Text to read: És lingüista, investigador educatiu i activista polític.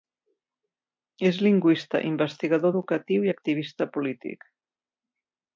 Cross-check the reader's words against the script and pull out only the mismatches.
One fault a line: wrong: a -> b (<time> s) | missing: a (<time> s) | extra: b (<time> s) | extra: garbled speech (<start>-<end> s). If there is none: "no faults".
no faults